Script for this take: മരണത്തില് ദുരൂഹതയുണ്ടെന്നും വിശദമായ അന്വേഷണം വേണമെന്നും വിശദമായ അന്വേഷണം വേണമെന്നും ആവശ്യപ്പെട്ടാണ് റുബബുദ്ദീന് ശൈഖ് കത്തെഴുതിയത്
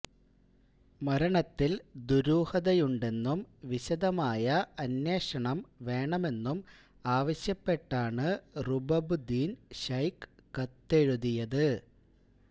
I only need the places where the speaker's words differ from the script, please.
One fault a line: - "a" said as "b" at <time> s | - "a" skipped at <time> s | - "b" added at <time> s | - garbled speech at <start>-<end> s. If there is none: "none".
- "വിശദമായ അന്വേഷണം വേണമെന്നും" skipped at 6.6 s